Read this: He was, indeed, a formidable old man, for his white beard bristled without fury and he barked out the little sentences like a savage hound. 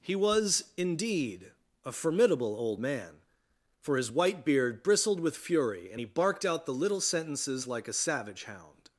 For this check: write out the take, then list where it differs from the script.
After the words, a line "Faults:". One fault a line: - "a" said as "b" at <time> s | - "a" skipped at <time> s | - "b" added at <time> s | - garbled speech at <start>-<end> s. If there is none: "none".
He was, indeed, a formidable old man, for his white beard bristled with fury and he barked out the little sentences like a savage hound.
Faults:
- "without" said as "with" at 5.2 s